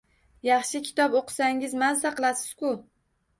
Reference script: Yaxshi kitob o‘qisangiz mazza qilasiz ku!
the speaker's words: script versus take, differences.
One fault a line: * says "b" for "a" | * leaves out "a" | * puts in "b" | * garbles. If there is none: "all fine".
all fine